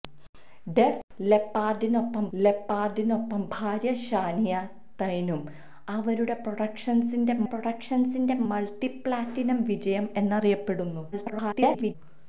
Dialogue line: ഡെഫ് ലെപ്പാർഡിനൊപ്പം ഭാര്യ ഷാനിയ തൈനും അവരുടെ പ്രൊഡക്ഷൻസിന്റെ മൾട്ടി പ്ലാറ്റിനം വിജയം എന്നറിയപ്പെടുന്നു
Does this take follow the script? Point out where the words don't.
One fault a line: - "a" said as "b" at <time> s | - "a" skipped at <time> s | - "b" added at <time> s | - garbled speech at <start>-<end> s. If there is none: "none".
- "ലെപ്പാർഡിനൊപ്പം" added at 2.4 s
- "പ്രൊഡക്ഷൻസിന്റെ" added at 7.5 s
- garbled speech at 11.1-11.9 s